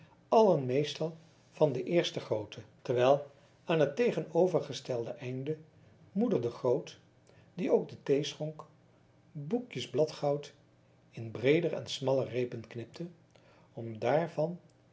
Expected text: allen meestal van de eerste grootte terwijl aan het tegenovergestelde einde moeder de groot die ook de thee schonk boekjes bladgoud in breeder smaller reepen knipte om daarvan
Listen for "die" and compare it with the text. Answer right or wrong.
right